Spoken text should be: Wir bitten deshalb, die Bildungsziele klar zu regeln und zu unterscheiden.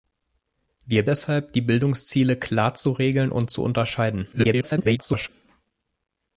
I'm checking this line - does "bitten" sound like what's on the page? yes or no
no